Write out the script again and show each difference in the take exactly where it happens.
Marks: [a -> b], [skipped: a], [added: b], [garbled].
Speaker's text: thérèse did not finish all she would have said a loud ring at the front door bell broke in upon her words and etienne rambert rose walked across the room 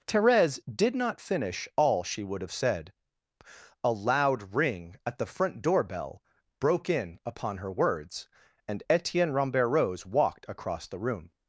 thérèse did not finish all she would have said a loud ring at the front door bell broke in upon her words and etienne rambert rose walked across the room